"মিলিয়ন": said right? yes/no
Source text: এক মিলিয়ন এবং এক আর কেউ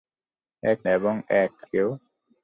no